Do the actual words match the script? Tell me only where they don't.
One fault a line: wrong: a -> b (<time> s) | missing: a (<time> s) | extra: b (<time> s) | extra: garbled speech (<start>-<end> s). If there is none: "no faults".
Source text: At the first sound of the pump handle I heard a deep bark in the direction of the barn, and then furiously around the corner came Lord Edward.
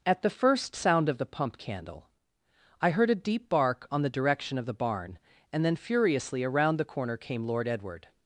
wrong: handle -> candle (1.6 s)
wrong: in -> on (3.9 s)